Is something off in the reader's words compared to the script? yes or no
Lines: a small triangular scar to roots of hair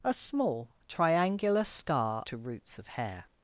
no